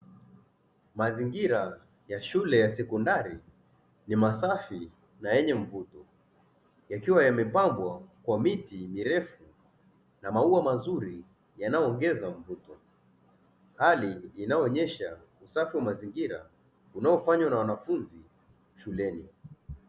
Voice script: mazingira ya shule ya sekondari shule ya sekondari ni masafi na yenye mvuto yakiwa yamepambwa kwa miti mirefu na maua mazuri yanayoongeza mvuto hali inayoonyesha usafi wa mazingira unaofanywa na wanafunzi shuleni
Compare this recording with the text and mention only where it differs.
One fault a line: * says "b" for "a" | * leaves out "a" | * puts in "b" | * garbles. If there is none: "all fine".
* leaves out "shule ya sekondari"